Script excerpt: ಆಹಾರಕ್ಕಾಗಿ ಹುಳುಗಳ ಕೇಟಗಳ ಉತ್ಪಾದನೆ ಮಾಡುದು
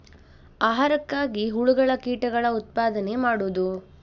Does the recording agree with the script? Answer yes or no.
yes